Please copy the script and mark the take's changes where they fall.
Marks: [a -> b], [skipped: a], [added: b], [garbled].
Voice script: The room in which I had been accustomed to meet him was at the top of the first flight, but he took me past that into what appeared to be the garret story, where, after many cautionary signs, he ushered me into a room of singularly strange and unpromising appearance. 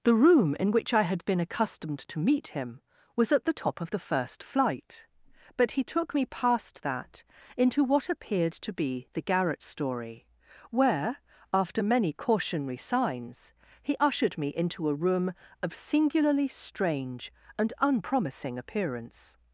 The room in which I had been accustomed to meet him was at the top of the first flight, but he took me past that into what appeared to be the garret story, where, after many cautionary signs, he ushered me into a room of singularly strange and unpromising appearance.